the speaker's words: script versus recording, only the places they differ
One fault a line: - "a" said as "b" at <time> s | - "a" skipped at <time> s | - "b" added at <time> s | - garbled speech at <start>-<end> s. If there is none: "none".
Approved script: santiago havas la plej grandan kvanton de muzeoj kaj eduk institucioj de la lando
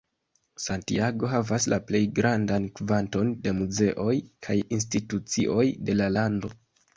- "eduk" skipped at 4.6 s